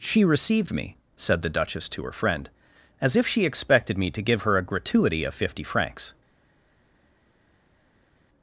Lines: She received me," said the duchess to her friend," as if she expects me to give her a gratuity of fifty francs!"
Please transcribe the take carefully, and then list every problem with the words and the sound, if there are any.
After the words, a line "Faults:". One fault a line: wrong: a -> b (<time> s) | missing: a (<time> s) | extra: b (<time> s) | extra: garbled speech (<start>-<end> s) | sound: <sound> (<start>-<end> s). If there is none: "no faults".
She received me," said the duchess to her friend," as if she expected me to give her a gratuity of fifty francs!"
Faults:
wrong: expects -> expected (3.5 s)